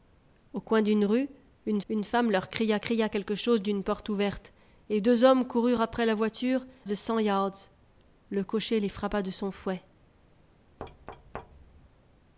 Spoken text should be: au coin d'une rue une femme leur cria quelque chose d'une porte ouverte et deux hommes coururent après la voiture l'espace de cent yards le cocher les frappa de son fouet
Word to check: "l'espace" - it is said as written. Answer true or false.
false